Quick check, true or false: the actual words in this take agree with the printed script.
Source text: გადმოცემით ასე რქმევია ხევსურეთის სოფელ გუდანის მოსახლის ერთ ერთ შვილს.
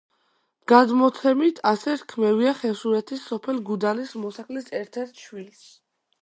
true